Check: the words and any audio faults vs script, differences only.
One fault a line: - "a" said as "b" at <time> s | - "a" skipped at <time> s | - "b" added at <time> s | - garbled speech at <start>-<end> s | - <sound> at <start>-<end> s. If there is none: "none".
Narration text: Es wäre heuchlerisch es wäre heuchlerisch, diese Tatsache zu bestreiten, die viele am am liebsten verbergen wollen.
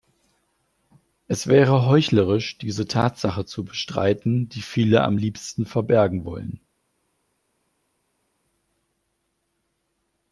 - "es wäre heuchlerisch" skipped at 2.6 s
- "am" skipped at 5.2 s